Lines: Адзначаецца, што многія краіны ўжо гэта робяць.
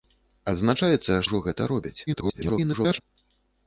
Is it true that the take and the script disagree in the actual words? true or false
true